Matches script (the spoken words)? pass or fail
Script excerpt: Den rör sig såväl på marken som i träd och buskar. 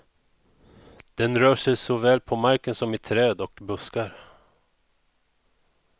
pass